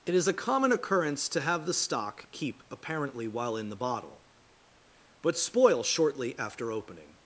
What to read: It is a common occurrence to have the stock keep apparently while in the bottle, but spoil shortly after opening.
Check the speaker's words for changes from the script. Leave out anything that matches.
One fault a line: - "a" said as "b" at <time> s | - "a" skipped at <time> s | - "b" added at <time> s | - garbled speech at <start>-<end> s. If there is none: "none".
none